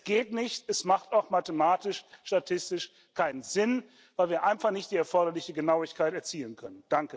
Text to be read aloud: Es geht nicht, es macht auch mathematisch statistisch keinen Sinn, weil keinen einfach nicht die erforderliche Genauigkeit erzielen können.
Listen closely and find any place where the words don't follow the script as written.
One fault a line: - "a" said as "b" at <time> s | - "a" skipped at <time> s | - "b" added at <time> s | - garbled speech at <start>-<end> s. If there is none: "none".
- "keinen" said as "wir" at 4.3 s